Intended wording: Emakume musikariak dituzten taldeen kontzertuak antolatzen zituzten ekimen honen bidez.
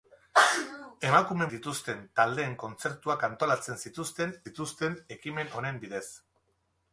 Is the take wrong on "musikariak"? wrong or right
wrong